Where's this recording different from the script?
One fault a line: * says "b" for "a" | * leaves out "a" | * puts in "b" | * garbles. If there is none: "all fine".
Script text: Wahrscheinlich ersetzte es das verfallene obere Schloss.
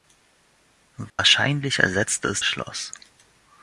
* leaves out "das verfallene obere"